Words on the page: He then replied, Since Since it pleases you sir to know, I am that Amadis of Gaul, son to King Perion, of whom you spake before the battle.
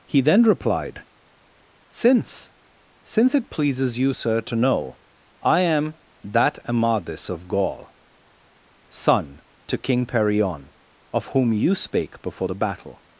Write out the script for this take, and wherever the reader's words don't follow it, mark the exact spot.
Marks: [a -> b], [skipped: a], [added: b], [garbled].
He then replied, Since Since it pleases you sir to know, I am that Amadis of Gaul, son to King Perion, of whom you spake before the battle.